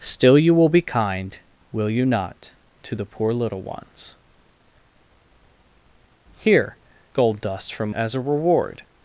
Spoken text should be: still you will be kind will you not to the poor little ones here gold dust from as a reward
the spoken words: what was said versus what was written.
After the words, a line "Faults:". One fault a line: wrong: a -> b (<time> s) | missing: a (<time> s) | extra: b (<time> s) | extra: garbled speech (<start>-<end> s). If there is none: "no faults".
still you will be kind will you not to the poor little ones here gold dust from as a reward
Faults:
no faults